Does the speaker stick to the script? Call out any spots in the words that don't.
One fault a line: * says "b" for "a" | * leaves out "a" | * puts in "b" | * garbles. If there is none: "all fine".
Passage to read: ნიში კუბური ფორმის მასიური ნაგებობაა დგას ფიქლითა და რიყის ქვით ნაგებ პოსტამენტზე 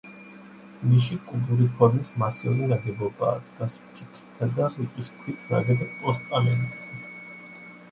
all fine